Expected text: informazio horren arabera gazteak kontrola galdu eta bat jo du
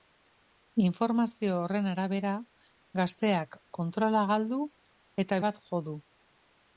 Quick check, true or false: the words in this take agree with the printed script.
true